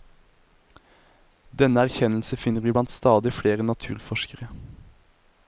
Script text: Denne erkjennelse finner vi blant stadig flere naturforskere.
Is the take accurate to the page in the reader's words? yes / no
yes